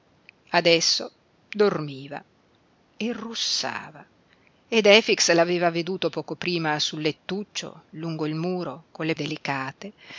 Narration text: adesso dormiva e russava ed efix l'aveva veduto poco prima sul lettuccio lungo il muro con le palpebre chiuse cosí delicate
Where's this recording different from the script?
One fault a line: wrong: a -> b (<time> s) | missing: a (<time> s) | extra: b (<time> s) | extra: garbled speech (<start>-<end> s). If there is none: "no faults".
missing: palpebre chiuse cosí (9.2 s)